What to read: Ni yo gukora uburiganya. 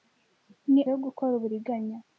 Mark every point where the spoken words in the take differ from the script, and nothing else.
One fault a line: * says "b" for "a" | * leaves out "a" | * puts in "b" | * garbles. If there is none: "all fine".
all fine